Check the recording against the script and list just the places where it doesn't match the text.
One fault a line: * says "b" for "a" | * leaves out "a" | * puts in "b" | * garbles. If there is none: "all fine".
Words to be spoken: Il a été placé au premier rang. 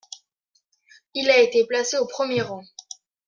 all fine